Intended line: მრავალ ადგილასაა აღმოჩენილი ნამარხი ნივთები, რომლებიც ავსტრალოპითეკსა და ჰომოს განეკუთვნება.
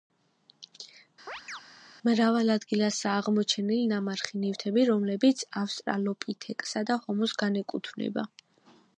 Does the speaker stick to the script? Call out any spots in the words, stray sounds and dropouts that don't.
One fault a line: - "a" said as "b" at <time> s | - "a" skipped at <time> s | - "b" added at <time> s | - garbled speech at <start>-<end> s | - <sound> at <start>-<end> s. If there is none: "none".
- chirp at 1.3-1.6 s